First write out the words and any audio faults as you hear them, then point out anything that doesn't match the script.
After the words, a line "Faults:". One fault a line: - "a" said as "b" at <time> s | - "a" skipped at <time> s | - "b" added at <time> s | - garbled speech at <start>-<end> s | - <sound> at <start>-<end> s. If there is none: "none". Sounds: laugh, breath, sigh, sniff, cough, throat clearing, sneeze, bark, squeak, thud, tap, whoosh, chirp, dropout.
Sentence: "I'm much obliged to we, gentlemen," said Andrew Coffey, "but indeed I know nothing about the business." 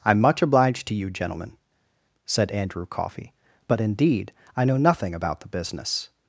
"I'm much obliged to you, gentlemen," said Andrew Coffey, "but indeed I know nothing about the business."
Faults:
- "we" said as "you" at 0.9 s